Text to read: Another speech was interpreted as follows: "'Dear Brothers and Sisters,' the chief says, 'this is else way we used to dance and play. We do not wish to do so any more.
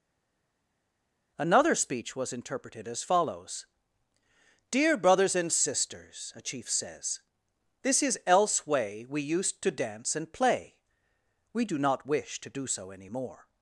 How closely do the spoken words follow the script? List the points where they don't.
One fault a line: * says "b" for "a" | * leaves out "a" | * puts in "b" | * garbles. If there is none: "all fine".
* says "a" for "the"